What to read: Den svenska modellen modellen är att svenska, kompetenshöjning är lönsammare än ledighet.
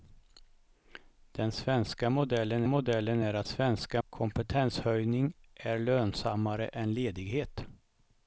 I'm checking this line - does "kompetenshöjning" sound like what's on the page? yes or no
yes